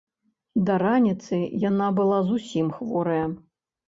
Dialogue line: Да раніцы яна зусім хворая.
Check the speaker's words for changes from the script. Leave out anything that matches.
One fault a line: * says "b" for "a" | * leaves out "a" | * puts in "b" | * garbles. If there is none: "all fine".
* puts in "была"